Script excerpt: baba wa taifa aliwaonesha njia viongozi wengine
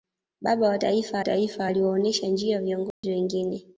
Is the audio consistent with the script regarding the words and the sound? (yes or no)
no